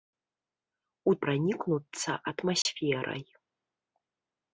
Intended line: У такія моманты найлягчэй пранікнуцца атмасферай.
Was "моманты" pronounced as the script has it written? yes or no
no